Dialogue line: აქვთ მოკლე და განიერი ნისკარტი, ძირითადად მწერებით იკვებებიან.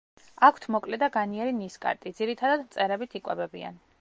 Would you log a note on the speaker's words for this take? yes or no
no